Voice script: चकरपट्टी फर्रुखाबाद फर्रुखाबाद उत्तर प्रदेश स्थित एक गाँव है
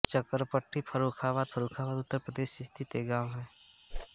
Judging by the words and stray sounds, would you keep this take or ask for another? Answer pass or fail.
fail